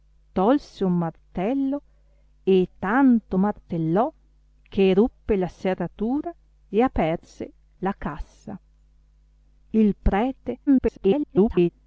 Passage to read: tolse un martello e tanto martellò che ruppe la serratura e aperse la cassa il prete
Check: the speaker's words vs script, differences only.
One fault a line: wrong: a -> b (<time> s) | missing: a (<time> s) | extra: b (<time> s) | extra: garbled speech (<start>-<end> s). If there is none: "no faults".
extra: garbled speech (10.7-11.7 s)